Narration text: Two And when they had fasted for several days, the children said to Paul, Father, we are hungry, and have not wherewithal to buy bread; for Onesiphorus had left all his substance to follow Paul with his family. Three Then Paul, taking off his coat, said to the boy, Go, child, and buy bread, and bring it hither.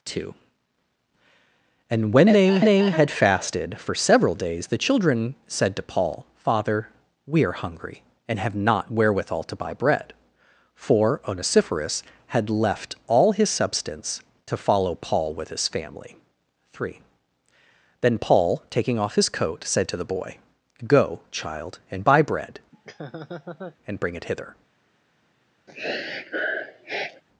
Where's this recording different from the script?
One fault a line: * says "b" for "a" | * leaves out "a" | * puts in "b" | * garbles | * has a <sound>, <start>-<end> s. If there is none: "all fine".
* puts in "they"
* has a laugh, 22.7-23.8 s
* has a sniff, 25.7-27.2 s